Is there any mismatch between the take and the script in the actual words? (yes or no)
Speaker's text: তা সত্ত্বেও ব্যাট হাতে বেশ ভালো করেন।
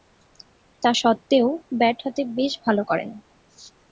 no